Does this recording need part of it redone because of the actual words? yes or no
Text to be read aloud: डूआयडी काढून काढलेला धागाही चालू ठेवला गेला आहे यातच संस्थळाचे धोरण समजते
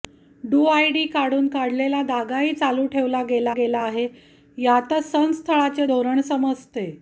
yes